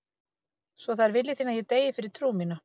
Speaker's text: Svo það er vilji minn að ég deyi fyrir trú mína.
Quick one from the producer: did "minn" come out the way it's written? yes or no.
no